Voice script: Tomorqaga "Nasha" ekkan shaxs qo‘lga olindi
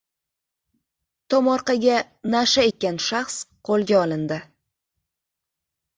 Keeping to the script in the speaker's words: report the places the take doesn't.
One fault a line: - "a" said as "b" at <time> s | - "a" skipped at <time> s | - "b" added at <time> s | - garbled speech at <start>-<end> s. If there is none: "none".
none